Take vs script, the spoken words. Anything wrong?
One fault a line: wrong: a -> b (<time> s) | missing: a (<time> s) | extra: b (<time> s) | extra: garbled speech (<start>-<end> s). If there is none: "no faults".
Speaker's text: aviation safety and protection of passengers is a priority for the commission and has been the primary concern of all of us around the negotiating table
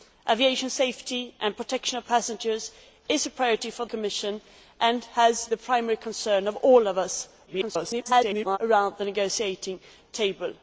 missing: the (3.9 s)
missing: been (5.5 s)
extra: garbled speech (7.5-8.6 s)